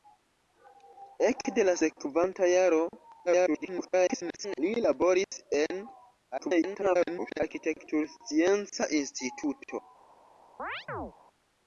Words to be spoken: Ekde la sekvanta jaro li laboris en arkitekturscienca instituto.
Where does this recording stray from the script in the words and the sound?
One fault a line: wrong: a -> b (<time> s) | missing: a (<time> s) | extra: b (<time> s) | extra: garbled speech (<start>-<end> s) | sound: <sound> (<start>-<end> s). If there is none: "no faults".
extra: garbled speech (3.3-4.6 s)
sound: dropout (5.3-5.3 s)
extra: garbled speech (6.4-7.4 s)
sound: chirp (10.6-11.1 s)